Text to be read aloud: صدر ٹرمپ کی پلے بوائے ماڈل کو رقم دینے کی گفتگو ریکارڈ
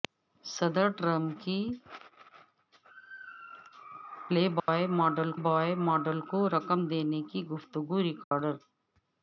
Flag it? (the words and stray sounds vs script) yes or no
yes